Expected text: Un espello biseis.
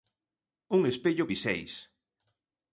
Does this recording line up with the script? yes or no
yes